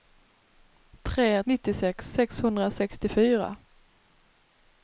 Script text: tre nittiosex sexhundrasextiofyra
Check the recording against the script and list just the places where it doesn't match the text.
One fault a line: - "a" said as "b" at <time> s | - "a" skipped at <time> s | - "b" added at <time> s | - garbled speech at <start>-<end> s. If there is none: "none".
none